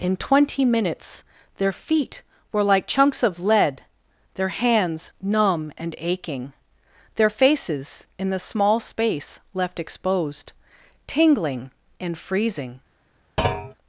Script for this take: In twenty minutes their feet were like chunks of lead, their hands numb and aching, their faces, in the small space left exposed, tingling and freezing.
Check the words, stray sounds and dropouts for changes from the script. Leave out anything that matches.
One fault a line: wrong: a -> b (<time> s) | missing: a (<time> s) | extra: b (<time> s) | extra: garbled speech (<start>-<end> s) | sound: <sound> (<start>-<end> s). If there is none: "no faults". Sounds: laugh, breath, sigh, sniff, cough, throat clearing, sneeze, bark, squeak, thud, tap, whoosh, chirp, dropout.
sound: thud (13.4-13.7 s)